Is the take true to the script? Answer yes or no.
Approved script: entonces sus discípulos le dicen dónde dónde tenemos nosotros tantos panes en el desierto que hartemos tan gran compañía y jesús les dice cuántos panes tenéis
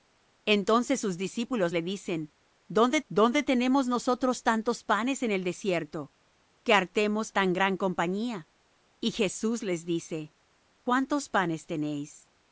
yes